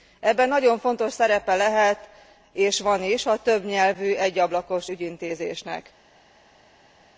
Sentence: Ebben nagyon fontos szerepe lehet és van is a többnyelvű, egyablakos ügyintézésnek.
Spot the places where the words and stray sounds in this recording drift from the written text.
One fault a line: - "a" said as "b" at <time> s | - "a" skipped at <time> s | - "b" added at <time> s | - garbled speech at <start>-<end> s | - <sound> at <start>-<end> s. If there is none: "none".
none